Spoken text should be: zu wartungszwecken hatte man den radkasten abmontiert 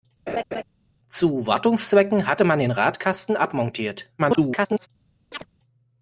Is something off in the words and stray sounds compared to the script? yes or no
yes